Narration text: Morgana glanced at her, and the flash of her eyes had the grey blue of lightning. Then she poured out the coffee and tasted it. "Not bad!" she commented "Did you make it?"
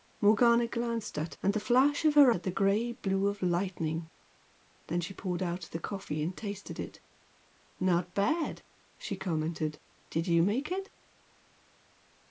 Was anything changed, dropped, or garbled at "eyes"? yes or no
yes